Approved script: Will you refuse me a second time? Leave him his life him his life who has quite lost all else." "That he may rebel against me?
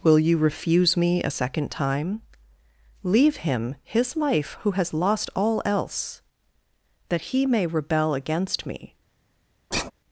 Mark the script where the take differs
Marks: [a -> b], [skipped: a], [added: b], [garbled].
Will you refuse me a second time? Leave him his life [skipped: him his life] who has [skipped: quite] lost all else." "That he may rebel against me?